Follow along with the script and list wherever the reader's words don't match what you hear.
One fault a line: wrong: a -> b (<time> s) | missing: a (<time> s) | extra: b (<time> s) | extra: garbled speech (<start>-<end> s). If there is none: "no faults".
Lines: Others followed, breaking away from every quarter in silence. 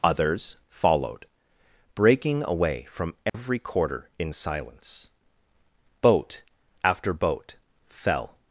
extra: Boat after boat fell (6.0 s)